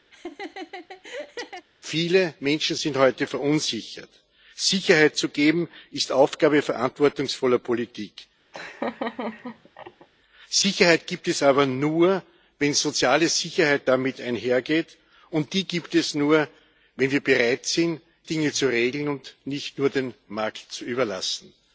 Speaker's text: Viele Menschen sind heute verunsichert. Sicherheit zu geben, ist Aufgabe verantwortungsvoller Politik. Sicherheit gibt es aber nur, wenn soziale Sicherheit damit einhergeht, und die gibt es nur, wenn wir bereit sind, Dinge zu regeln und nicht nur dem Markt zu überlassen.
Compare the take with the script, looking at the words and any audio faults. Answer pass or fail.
fail